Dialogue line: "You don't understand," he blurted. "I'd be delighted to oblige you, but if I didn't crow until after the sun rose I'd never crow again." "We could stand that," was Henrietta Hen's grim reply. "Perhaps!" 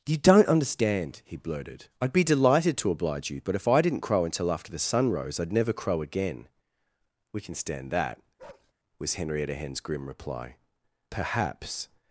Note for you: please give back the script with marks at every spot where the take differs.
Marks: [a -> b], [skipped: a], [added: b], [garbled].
"You don't understand," he blurted. "I'd be delighted to oblige you, but if I didn't crow until after the sun rose I'd never crow again." "We [could -> can] stand that," was Henrietta Hen's grim reply. "Perhaps!"